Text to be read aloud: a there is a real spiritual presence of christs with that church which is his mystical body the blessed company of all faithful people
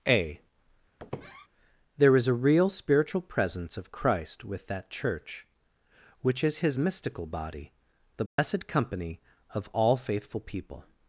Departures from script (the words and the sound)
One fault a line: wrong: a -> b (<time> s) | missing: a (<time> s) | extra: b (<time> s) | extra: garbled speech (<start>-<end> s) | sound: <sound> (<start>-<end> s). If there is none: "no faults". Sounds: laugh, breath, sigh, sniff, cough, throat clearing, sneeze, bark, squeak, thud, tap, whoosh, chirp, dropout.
sound: squeak (1.0-1.5 s)
wrong: christs -> christ (3.9 s)
sound: dropout (8.3-8.4 s)